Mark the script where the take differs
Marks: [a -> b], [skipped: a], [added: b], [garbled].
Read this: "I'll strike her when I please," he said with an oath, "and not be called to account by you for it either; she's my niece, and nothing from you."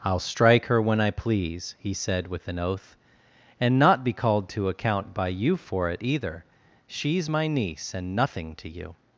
"I'll strike her when I please," he said with an oath, "and not be called to account by you for it either; she's my niece, and nothing [from -> to] you."